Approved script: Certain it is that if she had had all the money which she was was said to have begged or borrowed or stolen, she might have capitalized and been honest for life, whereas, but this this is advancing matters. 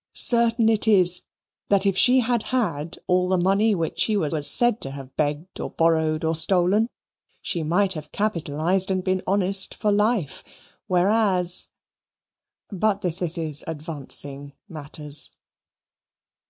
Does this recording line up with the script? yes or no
yes